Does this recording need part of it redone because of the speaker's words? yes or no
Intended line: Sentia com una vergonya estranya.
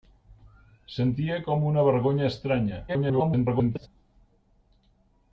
yes